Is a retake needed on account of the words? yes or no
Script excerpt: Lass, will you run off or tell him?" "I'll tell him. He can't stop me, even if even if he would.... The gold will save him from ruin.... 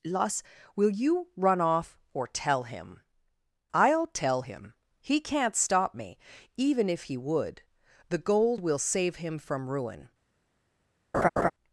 yes